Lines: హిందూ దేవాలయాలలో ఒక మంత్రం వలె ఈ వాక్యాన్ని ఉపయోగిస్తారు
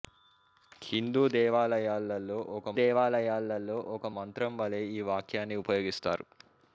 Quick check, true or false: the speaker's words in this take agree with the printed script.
false